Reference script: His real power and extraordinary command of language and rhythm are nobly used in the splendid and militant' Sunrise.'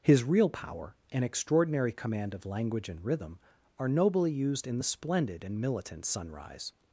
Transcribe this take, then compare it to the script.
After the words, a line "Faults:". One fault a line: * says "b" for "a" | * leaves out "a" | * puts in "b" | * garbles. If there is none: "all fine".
His real power and extraordinary command of language and rhythm are nobly used in the splendid and militant' Sunrise.'
Faults:
all fine